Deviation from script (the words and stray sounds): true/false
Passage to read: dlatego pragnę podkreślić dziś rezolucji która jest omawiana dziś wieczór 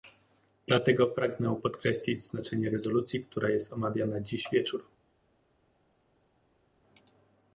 true